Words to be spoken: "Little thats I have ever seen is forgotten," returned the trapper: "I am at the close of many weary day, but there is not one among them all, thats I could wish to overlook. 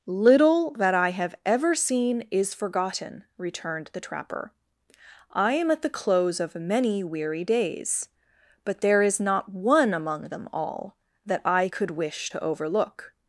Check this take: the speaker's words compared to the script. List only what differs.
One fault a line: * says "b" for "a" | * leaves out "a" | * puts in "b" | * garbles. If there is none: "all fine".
* says "that" for "thats"
* says "days" for "day"
* says "that" for "thats"